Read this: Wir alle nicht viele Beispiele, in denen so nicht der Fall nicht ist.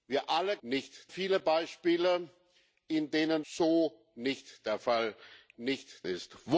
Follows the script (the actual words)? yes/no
yes